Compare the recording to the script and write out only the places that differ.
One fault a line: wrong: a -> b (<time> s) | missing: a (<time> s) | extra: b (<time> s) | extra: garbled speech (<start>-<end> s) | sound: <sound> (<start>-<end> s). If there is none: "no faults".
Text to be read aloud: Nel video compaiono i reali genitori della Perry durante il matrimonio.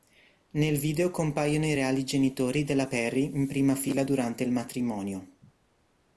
extra: in prima fila (3.3 s)